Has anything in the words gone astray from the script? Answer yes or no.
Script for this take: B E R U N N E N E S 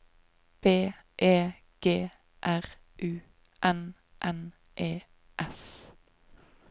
yes